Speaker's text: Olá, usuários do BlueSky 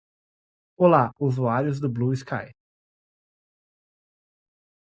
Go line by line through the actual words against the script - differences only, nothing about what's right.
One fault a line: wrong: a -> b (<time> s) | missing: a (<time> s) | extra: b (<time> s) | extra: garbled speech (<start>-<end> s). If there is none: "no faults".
no faults